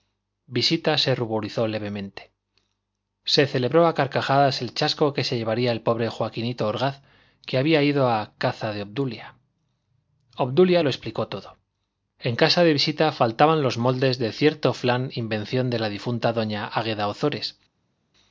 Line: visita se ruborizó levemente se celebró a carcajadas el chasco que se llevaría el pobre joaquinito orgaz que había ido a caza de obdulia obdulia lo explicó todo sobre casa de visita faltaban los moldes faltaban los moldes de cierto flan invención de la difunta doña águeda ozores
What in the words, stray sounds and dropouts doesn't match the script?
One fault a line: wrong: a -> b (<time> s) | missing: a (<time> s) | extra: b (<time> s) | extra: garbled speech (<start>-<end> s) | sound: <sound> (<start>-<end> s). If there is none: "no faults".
wrong: sobre -> en (12.2 s)
missing: faltaban los moldes (14.2 s)